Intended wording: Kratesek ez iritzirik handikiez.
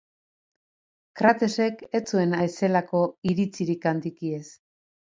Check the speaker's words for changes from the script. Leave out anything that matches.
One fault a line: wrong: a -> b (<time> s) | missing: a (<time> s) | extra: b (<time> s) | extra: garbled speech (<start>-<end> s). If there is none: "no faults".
extra: zuen ezelako (2.1 s)